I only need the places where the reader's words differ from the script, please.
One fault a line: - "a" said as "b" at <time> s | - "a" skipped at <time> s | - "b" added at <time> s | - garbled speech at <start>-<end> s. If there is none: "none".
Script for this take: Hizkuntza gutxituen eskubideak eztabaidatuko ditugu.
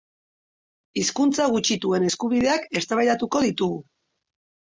none